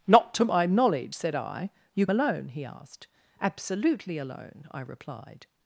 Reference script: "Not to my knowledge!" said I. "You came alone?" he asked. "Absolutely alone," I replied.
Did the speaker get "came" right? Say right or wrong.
wrong